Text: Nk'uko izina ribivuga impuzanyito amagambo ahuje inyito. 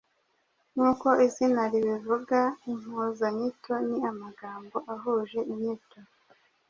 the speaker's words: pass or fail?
fail